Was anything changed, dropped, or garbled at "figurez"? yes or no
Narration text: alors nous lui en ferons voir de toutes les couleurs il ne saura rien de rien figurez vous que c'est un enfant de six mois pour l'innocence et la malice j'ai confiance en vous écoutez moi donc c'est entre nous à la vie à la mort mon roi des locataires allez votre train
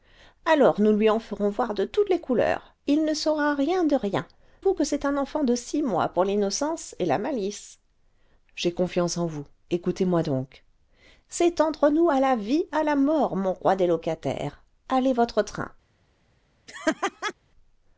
yes